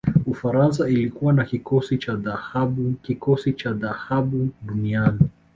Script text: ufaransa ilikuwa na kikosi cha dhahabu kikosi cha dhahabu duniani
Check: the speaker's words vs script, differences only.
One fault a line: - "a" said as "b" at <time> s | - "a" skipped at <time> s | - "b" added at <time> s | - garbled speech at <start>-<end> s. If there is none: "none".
none